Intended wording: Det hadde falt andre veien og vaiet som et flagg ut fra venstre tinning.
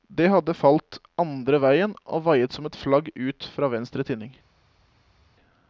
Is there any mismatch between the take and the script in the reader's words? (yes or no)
no